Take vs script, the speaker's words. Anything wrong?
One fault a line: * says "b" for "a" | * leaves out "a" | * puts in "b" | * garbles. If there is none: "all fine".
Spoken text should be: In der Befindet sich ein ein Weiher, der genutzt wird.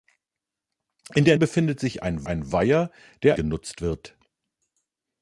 all fine